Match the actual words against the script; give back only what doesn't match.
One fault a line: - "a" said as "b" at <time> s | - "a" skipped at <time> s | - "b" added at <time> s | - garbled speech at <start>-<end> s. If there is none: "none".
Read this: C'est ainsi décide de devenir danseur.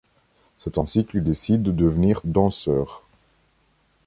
- "qu'il" added at 1.0 s